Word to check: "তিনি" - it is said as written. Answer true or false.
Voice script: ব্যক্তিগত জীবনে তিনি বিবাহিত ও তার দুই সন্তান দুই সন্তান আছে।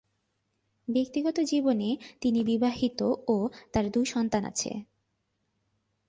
true